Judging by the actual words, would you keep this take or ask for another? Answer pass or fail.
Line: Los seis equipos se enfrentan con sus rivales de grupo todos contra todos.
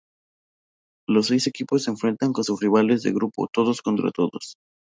pass